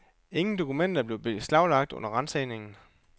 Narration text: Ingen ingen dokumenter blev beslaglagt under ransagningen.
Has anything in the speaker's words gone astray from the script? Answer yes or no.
yes